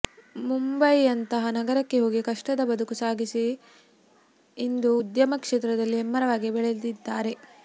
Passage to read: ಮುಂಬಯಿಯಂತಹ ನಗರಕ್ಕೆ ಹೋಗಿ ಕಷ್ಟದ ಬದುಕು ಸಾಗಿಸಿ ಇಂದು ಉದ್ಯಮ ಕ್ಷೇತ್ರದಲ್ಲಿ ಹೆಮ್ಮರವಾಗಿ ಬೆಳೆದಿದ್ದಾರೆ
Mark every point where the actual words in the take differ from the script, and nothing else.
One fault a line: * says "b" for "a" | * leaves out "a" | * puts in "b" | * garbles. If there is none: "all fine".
all fine